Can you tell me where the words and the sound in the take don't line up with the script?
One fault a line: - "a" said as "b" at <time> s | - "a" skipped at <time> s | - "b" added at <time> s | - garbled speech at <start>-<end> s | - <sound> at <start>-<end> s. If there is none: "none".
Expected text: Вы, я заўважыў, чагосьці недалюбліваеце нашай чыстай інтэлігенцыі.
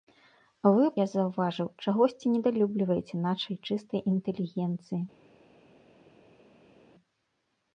none